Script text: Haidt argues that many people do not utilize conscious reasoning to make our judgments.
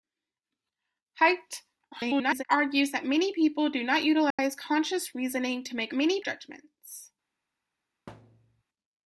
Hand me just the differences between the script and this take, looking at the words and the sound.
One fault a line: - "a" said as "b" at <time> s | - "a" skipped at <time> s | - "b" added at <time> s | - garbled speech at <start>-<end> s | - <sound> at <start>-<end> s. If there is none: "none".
- garbled speech at 1.9-2.4 s
- dropout at 4.3-4.4 s
- "our" said as "many" at 5.9 s
- thud at 8.1-8.6 s